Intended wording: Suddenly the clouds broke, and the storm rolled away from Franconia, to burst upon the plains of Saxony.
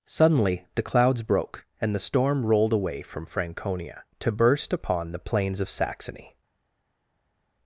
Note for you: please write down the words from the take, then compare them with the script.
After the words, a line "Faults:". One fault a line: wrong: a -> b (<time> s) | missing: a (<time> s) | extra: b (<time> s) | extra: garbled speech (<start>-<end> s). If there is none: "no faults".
Suddenly the clouds broke, and the storm rolled away from Franconia, to burst upon the plains of Saxony.
Faults:
no faults